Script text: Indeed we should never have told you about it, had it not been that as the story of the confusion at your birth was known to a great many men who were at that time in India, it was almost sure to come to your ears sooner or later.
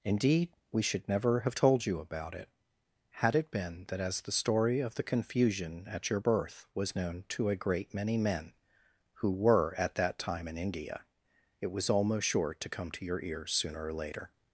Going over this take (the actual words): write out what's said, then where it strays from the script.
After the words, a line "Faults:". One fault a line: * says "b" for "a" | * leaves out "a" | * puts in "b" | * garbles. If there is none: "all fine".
Indeed we should never have told you about it, had it been that as the story of the confusion at your birth was known to a great many men who were at that time in India, it was almost sure to come to your ears sooner or later.
Faults:
* leaves out "not"